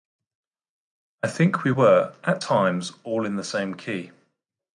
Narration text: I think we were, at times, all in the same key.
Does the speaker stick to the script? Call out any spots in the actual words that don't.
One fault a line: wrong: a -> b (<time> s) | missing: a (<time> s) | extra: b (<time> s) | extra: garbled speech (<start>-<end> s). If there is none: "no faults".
no faults